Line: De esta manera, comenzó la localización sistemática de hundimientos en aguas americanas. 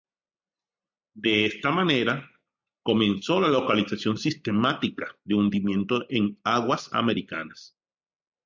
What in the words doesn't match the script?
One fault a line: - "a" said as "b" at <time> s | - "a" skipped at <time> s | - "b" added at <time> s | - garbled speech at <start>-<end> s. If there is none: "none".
none